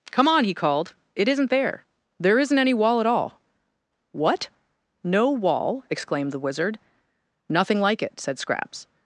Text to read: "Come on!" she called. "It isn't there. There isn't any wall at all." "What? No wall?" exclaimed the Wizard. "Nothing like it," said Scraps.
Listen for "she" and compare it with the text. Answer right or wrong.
wrong